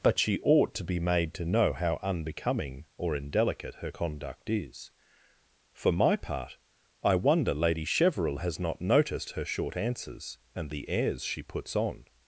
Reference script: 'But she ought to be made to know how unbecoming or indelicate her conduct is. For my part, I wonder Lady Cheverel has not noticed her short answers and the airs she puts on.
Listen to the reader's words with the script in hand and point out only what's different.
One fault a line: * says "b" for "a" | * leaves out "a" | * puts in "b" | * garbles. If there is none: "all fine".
all fine